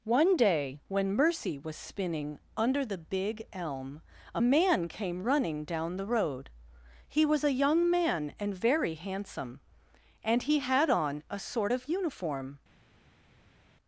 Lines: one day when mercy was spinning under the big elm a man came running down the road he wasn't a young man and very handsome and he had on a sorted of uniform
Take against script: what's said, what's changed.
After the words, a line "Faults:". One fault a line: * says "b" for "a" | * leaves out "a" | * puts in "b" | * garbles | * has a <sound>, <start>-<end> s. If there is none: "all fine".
one day when mercy was spinning under the big elm a man came running down the road he was a young man and very handsome and he had on a sort of uniform
Faults:
* says "was" for "wasn't"
* says "sort" for "sorted"